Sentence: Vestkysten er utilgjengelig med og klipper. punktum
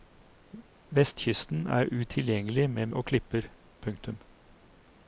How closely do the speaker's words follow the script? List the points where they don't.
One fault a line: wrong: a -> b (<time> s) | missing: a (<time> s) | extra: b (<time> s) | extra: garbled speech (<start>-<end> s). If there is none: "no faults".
no faults